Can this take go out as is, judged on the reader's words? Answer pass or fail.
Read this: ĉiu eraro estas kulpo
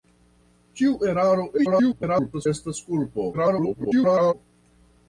fail